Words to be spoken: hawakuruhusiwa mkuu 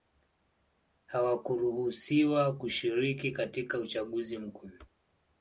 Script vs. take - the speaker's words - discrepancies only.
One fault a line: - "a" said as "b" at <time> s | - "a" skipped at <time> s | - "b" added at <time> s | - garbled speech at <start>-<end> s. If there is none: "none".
- "kushiriki katika uchaguzi" added at 2.6 s